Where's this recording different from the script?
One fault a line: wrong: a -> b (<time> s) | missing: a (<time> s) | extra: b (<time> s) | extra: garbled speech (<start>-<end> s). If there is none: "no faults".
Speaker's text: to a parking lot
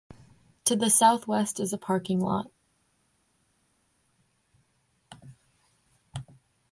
extra: the southwest is (0.8 s)